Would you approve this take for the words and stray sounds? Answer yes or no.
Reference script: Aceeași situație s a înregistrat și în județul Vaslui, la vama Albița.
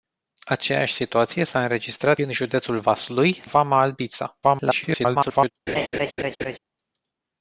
no